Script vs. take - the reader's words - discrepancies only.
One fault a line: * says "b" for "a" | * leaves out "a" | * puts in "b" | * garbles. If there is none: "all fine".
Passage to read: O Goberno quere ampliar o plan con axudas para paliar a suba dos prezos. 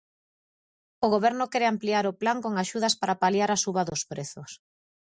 all fine